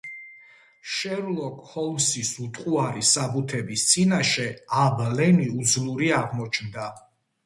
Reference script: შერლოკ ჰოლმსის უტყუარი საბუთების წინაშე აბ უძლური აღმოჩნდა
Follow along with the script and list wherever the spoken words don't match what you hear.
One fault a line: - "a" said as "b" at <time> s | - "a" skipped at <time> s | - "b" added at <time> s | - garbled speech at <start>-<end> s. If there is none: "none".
- "ლენი" added at 5.2 s